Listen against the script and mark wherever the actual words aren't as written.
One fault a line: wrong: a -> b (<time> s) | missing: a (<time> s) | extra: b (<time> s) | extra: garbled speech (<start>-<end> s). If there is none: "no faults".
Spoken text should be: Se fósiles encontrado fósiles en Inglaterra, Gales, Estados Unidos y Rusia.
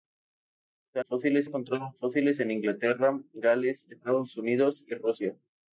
no faults